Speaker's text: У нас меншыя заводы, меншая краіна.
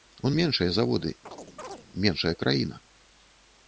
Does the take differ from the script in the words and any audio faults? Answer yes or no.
yes